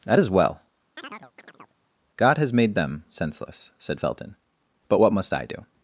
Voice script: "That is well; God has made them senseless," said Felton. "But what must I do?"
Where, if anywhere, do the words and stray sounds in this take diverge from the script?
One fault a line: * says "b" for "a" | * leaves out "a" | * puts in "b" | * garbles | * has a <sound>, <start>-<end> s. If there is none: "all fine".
* has a chirp, 1.0-1.8 s